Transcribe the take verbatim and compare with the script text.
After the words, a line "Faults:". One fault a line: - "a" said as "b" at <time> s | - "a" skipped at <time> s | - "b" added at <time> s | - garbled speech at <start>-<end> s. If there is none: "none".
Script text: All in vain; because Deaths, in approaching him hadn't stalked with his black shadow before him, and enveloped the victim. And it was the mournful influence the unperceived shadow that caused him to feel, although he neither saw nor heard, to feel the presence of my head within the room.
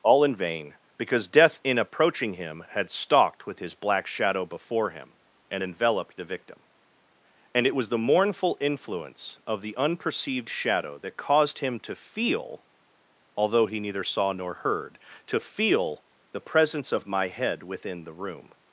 All in vain; because Death, in approaching him had stalked with his black shadow before him, and enveloped the victim. And it was the mournful influence of the unperceived shadow that caused him to feel, although he neither saw nor heard, to feel the presence of my head within the room.
Faults:
- "Deaths" said as "Death" at 1.3 s
- "hadn't" said as "had" at 2.7 s
- "of" added at 9.4 s